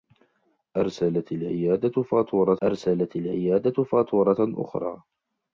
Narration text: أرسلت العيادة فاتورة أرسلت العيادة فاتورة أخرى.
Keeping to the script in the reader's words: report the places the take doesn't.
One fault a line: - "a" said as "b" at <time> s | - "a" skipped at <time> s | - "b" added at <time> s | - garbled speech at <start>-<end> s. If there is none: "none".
none